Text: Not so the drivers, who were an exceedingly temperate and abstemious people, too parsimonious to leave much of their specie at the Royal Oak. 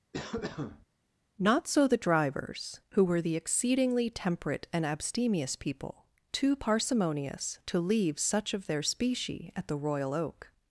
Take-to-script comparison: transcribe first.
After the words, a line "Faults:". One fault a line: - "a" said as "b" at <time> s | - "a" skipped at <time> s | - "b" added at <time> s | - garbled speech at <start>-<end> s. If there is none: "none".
Not so the drivers, who were the exceedingly temperate and abstemious people, too parsimonious to leave such of their specie at the Royal Oak.
Faults:
- "an" said as "the" at 3.2 s
- "much" said as "such" at 8.2 s